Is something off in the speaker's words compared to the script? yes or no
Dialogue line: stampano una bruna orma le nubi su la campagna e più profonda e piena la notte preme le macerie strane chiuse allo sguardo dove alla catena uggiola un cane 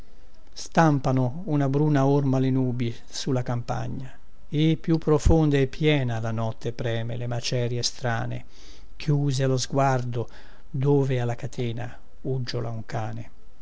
no